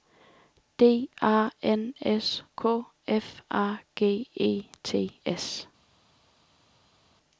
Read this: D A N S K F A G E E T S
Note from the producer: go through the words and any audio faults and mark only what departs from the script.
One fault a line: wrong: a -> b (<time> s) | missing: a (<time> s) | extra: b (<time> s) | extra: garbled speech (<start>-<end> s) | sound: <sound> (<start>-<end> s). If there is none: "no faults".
missing: E (4.6 s)